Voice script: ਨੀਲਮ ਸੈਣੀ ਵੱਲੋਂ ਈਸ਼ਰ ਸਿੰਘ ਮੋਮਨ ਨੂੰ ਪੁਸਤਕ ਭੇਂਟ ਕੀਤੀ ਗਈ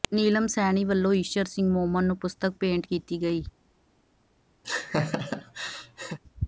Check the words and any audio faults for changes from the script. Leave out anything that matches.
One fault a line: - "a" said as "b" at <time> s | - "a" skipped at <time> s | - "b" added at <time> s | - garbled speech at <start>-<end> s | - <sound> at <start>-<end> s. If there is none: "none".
- laugh at 4.6-6.2 s